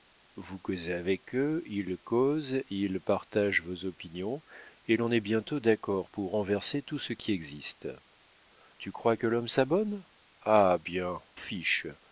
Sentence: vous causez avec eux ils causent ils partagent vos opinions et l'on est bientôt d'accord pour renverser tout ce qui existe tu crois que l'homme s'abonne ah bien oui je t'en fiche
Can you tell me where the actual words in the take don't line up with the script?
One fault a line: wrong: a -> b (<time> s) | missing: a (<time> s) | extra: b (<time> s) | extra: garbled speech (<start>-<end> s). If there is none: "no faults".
missing: oui je t'en (11.2 s)